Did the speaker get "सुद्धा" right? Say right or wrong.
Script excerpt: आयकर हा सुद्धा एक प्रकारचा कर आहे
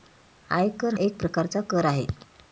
wrong